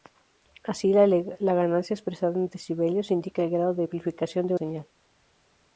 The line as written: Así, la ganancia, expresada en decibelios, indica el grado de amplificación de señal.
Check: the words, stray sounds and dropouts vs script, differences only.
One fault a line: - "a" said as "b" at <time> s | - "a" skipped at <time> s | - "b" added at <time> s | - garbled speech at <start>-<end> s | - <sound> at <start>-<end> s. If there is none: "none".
none